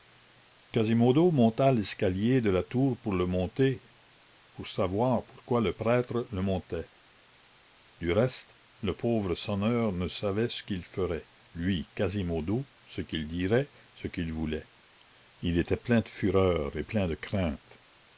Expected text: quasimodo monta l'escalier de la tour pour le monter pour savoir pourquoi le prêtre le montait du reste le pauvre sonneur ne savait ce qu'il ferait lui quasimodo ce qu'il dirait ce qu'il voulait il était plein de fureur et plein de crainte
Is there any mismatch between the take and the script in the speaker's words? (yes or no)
no